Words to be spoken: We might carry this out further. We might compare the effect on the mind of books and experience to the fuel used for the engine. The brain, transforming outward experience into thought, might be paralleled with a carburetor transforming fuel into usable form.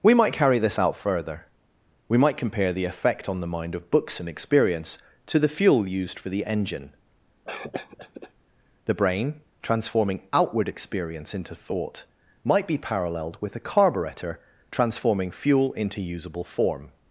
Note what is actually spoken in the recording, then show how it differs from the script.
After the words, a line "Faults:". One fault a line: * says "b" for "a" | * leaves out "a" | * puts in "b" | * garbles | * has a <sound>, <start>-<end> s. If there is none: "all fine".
We might carry this out further. We might compare the effect on the mind of books and experience to the fuel used for the engine. The brain, transforming outward experience into thought, might be paralleled with a carburetor transforming fuel into usable form.
Faults:
* has a cough, 7.4-8.3 s